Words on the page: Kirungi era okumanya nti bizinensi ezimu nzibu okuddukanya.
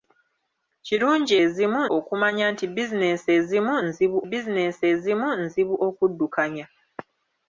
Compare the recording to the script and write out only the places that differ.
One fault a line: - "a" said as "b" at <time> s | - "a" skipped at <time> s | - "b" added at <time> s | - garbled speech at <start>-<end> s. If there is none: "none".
- "era" said as "ezimu" at 1.4 s
- "bizinensi ezimu nzibu" added at 4.3 s